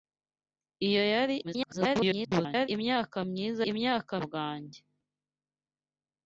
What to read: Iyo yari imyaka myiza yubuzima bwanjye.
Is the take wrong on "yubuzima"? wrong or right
wrong